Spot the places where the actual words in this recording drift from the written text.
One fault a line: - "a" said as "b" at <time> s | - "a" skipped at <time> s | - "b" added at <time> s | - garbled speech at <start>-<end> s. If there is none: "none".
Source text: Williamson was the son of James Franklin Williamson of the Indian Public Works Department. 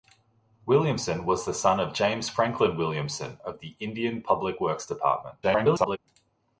- garbled speech at 5.4-6.0 s